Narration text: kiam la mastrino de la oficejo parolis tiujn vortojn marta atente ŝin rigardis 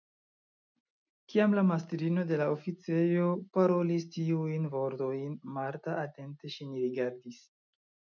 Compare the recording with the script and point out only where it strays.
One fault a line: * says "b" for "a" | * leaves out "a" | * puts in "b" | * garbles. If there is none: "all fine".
all fine